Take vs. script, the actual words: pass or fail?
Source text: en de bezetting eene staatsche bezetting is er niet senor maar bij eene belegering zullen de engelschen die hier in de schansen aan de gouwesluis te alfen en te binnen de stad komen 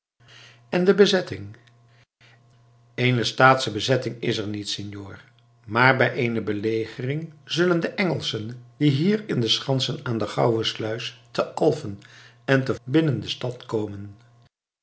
pass